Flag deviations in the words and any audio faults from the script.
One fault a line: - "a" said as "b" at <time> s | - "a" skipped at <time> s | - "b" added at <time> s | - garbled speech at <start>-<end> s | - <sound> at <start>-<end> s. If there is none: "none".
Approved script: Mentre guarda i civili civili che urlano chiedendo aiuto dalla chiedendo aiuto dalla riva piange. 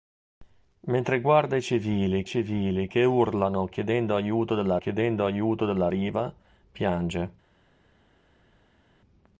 none